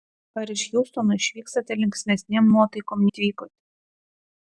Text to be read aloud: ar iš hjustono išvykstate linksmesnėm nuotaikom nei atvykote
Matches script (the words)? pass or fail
fail